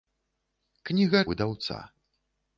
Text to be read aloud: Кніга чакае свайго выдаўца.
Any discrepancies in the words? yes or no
yes